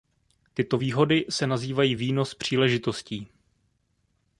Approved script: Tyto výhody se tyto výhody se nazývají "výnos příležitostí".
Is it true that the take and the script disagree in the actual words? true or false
true